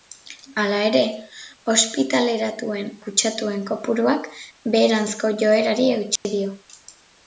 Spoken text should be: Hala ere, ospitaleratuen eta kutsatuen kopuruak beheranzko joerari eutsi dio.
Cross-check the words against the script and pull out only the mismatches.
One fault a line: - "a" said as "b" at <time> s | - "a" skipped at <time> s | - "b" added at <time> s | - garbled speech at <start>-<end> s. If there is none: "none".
- "eta" skipped at 2.9 s